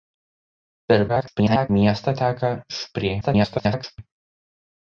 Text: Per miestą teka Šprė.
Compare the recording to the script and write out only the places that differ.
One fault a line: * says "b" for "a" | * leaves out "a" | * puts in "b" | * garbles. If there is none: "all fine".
* garbles
* garbles